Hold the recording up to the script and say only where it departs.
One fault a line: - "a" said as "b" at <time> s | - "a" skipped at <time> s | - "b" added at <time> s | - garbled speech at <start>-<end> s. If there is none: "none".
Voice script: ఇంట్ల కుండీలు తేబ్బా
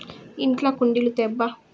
none